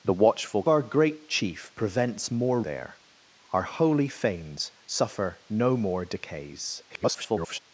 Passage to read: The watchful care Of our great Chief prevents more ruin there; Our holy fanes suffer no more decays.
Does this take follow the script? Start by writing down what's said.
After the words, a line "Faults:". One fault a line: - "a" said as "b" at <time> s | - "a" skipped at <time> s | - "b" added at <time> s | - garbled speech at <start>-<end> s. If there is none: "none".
The watchful our great Chief prevents more there; Our holy fanes suffer no more decays. [garbled]
Faults:
- "care Of" skipped at 0.6 s
- "ruin" skipped at 2.6 s
- garbled speech at 6.9-7.6 s